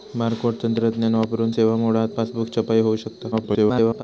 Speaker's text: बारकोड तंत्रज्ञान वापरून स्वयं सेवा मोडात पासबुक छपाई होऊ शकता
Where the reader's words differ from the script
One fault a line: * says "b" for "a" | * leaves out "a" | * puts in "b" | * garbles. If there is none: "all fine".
* leaves out "स्वयं"
* garbles